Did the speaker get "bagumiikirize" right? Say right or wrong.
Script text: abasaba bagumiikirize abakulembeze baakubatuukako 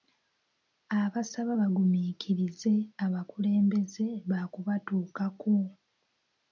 right